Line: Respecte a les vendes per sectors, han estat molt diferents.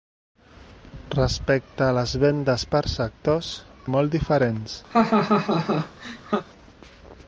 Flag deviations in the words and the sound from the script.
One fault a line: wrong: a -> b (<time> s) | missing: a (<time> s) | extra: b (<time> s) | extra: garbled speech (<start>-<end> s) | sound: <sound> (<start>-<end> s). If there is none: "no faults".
missing: han estat (3.5 s)
sound: laugh (4.9-6.4 s)